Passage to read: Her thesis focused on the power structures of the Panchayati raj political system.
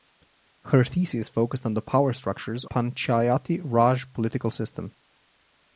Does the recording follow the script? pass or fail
fail